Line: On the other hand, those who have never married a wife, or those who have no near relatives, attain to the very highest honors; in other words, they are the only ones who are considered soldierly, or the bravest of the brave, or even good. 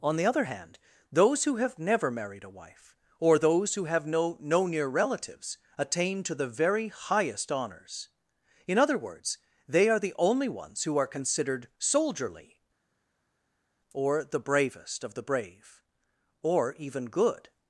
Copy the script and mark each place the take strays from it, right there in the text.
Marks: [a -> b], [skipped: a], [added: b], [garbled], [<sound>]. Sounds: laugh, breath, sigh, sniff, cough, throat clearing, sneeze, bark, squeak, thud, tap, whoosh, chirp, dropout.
On the other hand, those who have never married a wife, or those who have no [added: no] near relatives, attain to the very highest honors; in other words, they are the only ones who are considered soldierly, or the bravest of the brave, or even good.